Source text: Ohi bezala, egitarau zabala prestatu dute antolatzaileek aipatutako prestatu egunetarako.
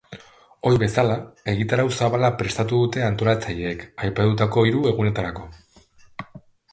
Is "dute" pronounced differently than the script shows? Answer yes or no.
no